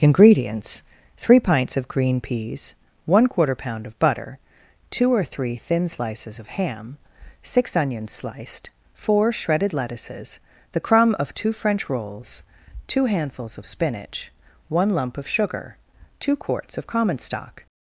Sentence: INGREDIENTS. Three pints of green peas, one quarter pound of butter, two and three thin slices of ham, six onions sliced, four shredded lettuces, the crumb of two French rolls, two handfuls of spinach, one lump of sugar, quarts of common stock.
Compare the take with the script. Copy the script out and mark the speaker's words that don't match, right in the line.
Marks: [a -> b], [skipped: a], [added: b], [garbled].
INGREDIENTS. Three pints of green peas, one quarter pound of butter, two [and -> or] three thin slices of ham, six onions sliced, four shredded lettuces, the crumb of two French rolls, two handfuls of spinach, one lump of sugar, [added: two] quarts of common stock.